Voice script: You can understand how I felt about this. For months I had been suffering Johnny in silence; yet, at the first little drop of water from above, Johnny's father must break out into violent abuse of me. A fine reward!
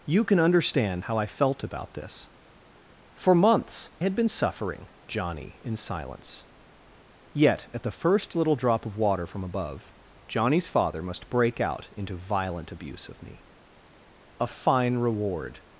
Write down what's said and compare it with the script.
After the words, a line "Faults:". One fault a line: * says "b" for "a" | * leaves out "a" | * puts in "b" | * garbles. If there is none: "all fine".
You can understand how I felt about this. For months had been suffering Johnny in silence; yet, at the first little drop of water from above, Johnny's father must break out into violent abuse of me. A fine reward!
Faults:
* leaves out "I"